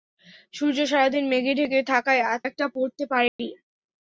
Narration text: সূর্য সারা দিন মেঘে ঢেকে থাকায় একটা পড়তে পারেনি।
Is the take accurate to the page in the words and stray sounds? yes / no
no